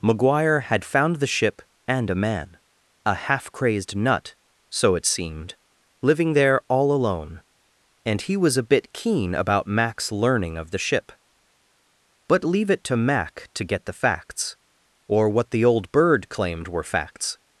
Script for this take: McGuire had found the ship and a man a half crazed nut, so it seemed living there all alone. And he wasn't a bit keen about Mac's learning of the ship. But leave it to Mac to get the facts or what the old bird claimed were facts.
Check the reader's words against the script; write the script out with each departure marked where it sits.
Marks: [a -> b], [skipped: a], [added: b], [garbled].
McGuire had found the ship and a man a half crazed nut, so it seemed living there all alone. And he [wasn't -> was] a bit keen about Mac's learning of the ship. But leave it to Mac to get the facts or what the old bird claimed were facts.